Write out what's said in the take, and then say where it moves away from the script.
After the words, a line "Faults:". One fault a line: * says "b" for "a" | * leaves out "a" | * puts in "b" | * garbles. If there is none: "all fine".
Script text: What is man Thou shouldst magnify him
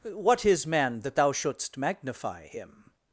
What is man that Thou shouldst magnify him
Faults:
* puts in "that"